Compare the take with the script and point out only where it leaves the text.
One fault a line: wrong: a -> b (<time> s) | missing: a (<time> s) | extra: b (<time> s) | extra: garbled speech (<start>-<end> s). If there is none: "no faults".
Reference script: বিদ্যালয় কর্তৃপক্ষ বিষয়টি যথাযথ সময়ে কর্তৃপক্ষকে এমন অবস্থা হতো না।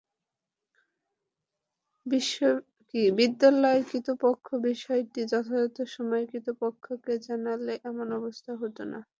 extra: জানালে (7.3 s)